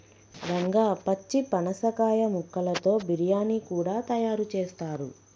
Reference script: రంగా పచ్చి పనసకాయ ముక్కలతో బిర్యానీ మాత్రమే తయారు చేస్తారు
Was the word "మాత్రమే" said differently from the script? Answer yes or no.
yes